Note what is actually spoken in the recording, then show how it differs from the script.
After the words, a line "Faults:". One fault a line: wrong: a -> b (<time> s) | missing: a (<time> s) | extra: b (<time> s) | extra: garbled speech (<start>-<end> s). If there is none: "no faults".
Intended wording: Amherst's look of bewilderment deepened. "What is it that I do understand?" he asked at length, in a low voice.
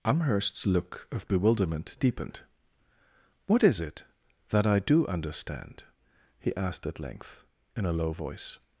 Amherst's look of bewilderment deepened. "What is it that I do understand?" he asked at length, in a low voice.
Faults:
no faults